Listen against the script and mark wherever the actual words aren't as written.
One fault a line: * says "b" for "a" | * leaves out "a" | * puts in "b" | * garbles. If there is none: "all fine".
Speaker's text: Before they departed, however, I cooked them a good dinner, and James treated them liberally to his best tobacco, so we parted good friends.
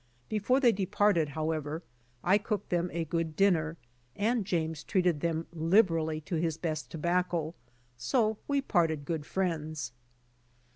all fine